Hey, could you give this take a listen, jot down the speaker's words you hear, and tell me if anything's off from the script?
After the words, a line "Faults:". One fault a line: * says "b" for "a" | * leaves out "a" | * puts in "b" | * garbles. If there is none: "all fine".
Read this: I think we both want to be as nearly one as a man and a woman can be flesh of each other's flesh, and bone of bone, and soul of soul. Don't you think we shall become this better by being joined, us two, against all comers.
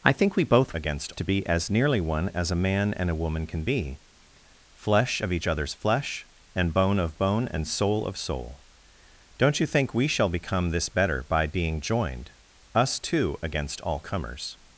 I think we both against to be as nearly one as a man and a woman can be flesh of each other's flesh, and bone of bone, and soul of soul. Don't you think we shall become this better by being joined, us two, against all comers.
Faults:
* says "against" for "want"